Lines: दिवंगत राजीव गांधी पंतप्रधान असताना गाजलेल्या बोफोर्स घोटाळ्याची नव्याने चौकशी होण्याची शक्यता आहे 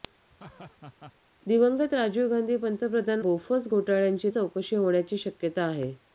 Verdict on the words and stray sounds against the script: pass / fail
fail